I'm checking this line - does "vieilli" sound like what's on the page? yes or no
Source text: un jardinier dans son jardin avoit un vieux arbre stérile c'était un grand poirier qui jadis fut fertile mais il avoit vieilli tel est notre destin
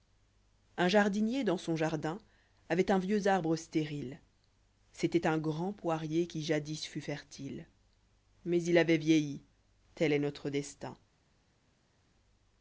yes